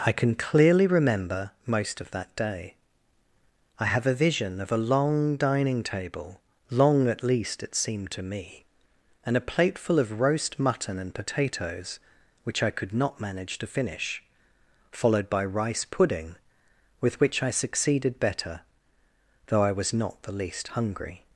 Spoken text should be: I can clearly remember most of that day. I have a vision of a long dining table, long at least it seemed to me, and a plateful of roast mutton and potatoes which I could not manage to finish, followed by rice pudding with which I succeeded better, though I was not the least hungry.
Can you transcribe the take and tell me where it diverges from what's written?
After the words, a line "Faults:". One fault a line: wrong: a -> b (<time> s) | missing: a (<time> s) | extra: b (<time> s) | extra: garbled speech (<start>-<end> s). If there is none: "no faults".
I can clearly remember most of that day. I have a vision of a long dining table, long at least it seemed to me, and a plateful of roast mutton and potatoes which I could not manage to finish, followed by rice pudding with which I succeeded better, though I was not the least hungry.
Faults:
no faults